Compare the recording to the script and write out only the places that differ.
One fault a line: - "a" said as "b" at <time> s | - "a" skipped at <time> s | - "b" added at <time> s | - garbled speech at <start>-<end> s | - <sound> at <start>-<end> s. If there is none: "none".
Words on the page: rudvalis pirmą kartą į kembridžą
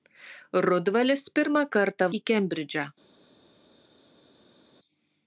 none